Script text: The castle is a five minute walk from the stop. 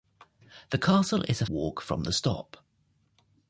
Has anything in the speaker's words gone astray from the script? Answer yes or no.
yes